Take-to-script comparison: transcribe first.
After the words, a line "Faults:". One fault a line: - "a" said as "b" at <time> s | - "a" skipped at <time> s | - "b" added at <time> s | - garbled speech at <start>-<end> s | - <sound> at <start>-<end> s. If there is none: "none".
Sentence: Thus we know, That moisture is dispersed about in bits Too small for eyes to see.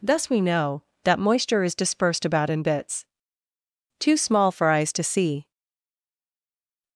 Thus we know, That moisture is dispersed about in bits Too small for eyes to see.
Faults:
none